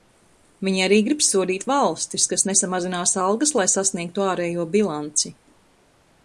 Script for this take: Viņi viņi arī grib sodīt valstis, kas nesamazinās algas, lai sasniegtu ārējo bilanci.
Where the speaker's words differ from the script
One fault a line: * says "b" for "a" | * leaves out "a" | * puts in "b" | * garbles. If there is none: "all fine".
* leaves out "viņi"